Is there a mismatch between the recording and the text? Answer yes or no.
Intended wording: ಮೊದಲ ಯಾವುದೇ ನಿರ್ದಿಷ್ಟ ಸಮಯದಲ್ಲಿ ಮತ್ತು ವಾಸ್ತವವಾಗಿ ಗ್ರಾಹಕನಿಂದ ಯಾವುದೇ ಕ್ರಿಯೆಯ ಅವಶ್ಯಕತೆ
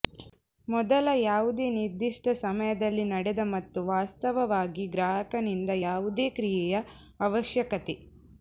yes